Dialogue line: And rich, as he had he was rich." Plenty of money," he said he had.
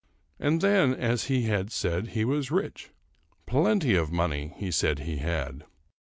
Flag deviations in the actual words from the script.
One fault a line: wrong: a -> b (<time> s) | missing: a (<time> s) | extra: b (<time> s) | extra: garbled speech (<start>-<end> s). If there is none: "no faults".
wrong: rich -> then (0.6 s)
extra: said (1.7 s)